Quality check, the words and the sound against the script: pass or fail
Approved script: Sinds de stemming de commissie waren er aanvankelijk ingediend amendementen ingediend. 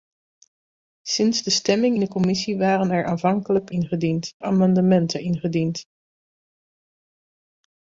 pass